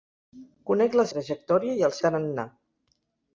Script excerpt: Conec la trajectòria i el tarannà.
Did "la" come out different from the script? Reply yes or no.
no